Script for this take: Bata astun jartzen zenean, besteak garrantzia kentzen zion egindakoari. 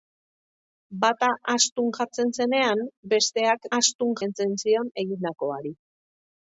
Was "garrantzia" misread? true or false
true